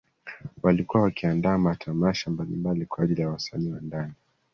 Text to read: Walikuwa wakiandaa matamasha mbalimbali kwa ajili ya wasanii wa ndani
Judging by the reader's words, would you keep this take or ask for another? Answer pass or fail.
pass